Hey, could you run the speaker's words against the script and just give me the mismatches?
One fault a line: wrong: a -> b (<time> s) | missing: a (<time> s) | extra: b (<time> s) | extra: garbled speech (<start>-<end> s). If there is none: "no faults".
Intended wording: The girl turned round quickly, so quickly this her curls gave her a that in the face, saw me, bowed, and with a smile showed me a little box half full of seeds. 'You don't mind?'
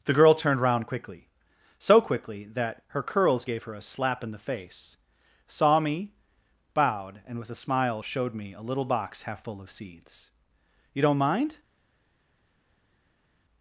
wrong: this -> that (2.5 s)
wrong: that -> slap (3.8 s)